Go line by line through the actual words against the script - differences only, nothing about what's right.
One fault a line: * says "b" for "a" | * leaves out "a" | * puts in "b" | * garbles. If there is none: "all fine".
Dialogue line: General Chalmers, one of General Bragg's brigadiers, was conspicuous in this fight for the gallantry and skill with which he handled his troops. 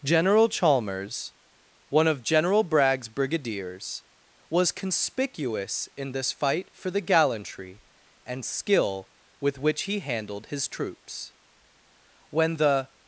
* puts in "When the"